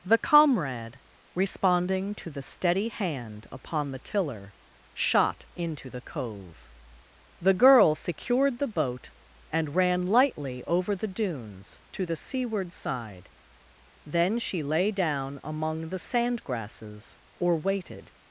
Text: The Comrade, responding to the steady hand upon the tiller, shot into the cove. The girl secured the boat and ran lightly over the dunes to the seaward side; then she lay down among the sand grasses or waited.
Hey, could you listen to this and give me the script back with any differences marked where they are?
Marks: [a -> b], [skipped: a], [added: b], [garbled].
The Comrade, responding to the steady hand upon the tiller, shot into the cove. The girl secured the boat and ran lightly over the dunes to the seaward side; then she lay down among the sand grasses or waited.